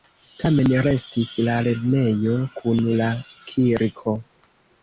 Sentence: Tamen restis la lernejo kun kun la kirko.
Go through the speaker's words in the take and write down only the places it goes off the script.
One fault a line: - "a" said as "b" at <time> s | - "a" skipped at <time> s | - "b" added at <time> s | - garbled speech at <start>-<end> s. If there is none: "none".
- "kun" skipped at 2.8 s